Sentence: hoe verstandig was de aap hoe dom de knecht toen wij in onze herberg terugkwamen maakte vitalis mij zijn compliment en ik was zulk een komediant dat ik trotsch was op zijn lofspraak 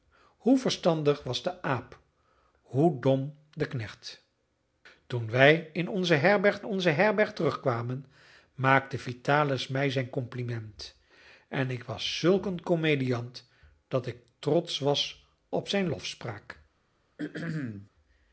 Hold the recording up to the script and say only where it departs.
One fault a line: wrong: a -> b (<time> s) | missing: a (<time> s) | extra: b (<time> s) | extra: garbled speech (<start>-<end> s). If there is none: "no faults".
extra: onze herberg (6.6 s)